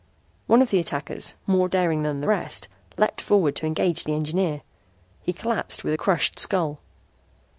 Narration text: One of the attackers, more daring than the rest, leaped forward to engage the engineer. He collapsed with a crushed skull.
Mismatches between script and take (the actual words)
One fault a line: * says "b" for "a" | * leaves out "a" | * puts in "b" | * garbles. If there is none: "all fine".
all fine